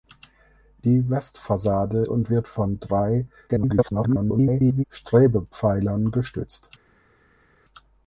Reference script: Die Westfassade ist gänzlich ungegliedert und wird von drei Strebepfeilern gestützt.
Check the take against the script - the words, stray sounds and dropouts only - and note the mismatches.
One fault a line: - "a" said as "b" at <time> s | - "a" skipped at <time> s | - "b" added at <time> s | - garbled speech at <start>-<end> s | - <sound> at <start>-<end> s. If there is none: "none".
- "ist gänzlich ungegliedert" skipped at 2.0 s
- garbled speech at 3.5-4.8 s